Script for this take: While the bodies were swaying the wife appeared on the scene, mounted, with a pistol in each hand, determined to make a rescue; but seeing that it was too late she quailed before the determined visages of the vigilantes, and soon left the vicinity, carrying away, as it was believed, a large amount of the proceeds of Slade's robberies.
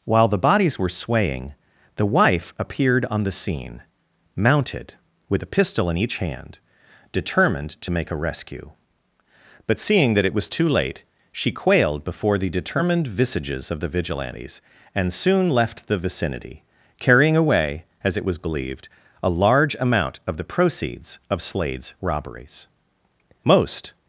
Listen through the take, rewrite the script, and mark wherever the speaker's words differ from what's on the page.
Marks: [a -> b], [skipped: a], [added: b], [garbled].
While the bodies were swaying the wife appeared on the scene, mounted, with a pistol in each hand, determined to make a rescue; but seeing that it was too late she quailed before the determined visages of the vigilantes, and soon left the vicinity, carrying away, as it was believed, a large amount of the proceeds of Slade's robberies. [added: Most]